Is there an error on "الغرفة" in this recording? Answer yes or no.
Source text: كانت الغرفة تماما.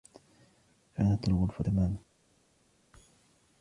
no